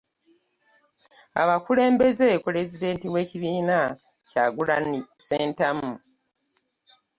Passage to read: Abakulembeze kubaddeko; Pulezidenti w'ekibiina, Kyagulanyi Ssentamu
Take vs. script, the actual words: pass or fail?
fail